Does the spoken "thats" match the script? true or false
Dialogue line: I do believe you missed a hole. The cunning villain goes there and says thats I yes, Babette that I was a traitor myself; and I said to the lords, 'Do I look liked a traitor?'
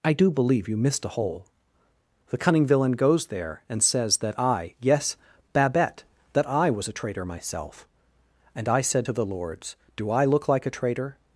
false